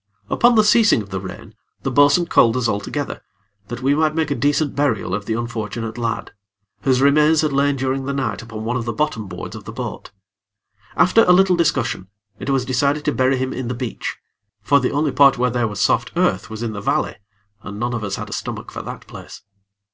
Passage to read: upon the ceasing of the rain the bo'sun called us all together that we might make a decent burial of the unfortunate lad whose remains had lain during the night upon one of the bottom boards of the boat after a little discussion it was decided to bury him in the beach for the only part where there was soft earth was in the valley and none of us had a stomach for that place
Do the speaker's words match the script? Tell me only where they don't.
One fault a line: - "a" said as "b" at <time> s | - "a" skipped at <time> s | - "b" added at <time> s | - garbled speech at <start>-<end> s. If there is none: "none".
none